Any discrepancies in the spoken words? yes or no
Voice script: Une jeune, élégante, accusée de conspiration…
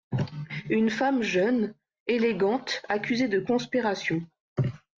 yes